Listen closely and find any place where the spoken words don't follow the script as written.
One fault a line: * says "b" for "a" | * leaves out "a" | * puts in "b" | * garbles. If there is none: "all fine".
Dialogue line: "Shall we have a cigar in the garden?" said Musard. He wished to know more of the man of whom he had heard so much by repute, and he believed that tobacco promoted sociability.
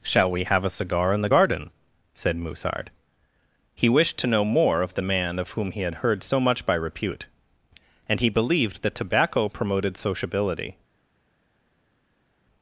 all fine